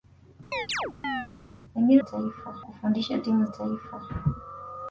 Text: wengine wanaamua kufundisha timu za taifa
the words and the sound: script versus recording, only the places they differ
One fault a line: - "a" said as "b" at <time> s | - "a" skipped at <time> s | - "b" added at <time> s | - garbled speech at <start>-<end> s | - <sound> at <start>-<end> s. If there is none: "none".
- chirp at 0.5-1.3 s
- "wanaamua" said as "taifa" at 2.0 s
- "za" skipped at 3.4 s